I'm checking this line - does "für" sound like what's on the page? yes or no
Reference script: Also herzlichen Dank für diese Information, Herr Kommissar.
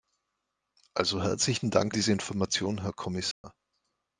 no